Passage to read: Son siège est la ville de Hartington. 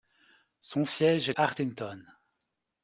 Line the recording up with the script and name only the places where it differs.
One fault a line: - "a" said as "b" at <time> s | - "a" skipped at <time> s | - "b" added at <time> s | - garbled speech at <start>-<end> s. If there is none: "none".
- "la ville de" skipped at 1.3 s